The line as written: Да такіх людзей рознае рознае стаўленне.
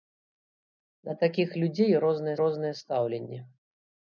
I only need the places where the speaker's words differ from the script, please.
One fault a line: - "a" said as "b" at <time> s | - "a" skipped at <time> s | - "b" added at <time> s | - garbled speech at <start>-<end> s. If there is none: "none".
none